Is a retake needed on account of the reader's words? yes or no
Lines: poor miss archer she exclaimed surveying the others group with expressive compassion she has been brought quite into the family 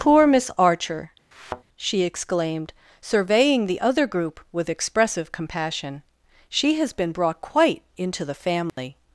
yes